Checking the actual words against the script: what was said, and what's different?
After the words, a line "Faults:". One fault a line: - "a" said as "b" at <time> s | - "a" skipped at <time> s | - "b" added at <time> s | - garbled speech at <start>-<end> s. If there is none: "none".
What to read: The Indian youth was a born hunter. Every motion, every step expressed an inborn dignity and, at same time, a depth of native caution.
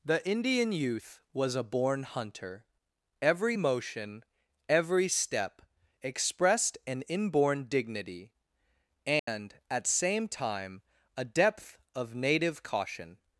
The Indian youth was a born hunter. Every motion, every step expressed an inborn dignity and, at same time, a depth of native caution.
Faults:
none